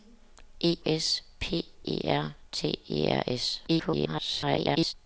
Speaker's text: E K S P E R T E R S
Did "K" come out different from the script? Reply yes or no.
yes